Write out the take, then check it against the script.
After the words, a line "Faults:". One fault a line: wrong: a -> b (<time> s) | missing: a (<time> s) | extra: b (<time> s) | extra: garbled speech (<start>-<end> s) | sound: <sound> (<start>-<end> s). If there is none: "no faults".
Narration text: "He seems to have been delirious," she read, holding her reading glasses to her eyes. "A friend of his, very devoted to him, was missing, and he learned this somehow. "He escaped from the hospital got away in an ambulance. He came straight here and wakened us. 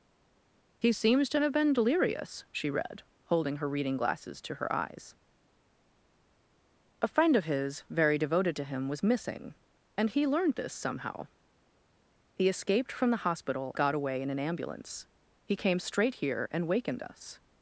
"He seems to have been delirious," she read, holding her reading glasses to her eyes. "A friend of his, very devoted to him, was missing, and he learned this somehow. "He escaped from the hospital got away in an ambulance. He came straight here and wakened us.
Faults:
no faults